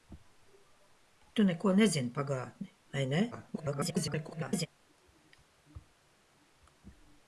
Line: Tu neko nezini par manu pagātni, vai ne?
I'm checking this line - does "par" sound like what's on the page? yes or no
no